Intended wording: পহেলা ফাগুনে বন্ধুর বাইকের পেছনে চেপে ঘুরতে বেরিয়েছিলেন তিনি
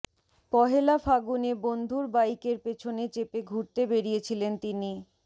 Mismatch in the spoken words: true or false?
false